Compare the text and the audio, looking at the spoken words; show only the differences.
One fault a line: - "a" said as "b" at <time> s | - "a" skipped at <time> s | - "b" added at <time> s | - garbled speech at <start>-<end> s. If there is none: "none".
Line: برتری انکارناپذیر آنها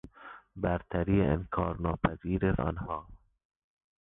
none